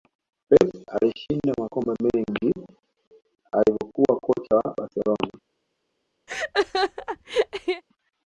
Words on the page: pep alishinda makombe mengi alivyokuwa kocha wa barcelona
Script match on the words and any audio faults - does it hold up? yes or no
no